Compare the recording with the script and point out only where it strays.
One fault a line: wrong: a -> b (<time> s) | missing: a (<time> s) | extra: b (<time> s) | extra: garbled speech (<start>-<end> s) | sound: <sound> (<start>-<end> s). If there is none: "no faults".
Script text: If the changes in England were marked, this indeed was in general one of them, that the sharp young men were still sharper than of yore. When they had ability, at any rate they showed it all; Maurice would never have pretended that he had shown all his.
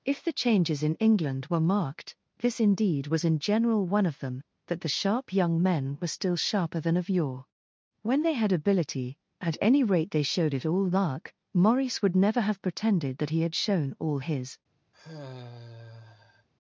extra: lark (10.9 s)
sound: sigh (14.9-16.5 s)